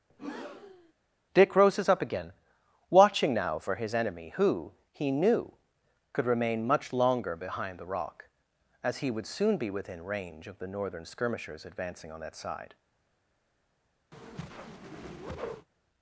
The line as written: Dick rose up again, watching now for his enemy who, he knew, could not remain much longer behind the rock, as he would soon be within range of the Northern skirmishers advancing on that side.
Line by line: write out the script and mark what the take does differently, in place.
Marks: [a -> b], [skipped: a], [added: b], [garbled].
Dick [rose -> roses] up again, watching now for his enemy who, he knew, could [skipped: not] remain much longer behind the rock, as he would soon be within range of the Northern skirmishers advancing on that side.